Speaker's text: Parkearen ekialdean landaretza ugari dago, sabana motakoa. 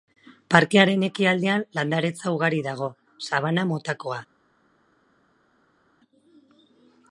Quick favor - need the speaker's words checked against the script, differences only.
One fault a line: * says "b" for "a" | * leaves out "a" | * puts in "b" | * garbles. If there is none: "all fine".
all fine